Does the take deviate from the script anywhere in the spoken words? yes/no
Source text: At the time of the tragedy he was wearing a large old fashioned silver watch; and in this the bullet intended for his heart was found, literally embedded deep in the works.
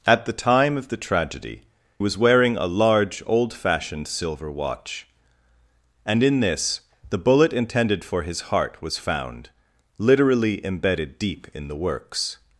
yes